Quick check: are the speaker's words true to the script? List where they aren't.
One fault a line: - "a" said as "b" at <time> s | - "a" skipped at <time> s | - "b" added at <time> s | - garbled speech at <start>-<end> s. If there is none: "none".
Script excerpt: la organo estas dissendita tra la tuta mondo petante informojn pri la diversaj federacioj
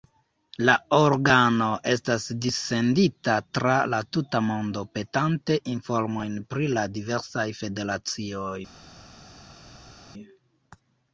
none